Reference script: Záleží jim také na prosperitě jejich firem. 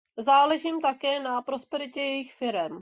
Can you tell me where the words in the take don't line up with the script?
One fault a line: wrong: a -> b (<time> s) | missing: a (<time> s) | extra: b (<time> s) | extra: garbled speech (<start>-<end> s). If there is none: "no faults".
no faults